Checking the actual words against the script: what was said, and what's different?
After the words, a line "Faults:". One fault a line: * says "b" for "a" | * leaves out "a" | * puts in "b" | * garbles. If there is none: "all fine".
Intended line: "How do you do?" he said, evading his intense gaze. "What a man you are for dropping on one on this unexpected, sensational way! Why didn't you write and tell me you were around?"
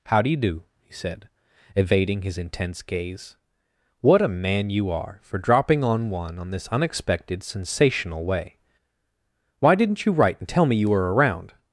"How do you do?" he said, evading his intense gaze. "What a man you are for dropping on one on this unexpected, sensational way! Why didn't you write and tell me you were around?"
Faults:
all fine